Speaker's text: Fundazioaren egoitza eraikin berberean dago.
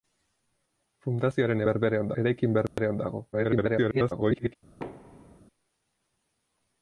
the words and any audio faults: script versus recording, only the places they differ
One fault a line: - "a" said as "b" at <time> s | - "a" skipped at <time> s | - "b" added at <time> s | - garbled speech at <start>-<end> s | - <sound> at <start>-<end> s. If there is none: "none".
- "egoitza" said as "berberean" at 1.7 s
- dropout at 2.7-2.8 s
- garbled speech at 3.3-4.6 s
- thud at 4.8-5.4 s